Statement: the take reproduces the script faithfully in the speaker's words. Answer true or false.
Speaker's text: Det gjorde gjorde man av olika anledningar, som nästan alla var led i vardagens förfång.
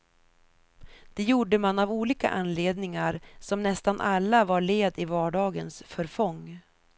false